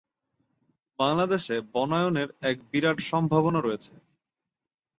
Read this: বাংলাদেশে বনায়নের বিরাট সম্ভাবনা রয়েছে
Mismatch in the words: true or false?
true